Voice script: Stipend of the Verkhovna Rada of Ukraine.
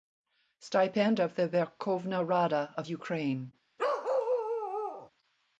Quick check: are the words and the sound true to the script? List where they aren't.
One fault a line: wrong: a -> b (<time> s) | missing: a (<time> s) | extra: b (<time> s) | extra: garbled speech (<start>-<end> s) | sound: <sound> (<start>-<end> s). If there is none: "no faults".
sound: bark (3.8-5.1 s)